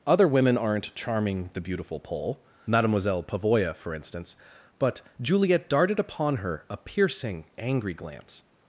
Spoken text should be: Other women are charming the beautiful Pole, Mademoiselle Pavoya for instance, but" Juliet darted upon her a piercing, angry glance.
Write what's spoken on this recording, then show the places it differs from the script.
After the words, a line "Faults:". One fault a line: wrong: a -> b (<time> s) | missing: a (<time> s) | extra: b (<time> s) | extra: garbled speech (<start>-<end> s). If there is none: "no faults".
Other women aren't charming the beautiful Pole, Mademoiselle Pavoya for instance, but" Juliet darted upon her a piercing, angry glance.
Faults:
wrong: are -> aren't (0.6 s)